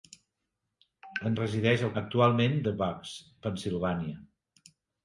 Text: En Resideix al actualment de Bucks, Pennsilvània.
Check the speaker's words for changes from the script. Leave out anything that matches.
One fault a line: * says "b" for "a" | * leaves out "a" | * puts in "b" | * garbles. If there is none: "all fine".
all fine